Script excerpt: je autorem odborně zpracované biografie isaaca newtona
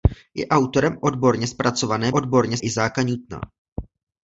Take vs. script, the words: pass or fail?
fail